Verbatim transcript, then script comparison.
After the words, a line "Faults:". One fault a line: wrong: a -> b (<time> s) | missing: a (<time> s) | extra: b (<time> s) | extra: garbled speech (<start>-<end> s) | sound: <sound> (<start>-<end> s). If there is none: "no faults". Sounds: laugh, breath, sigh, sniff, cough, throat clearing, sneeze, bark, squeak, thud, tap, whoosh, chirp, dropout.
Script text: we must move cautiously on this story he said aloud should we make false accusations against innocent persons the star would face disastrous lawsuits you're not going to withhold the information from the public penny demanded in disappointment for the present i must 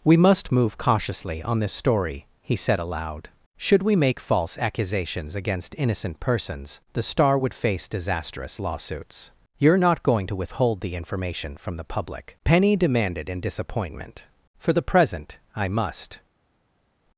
we must move cautiously on this story he said aloud should we make false accusations against innocent persons the star would face disastrous lawsuits you're not going to withhold the information from the public penny demanded in disappointment for the present i must
Faults:
no faults